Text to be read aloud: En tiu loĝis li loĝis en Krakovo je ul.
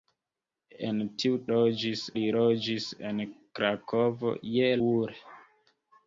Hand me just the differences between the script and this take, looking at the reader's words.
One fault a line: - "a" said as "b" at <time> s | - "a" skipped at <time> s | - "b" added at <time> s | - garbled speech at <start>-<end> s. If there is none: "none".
none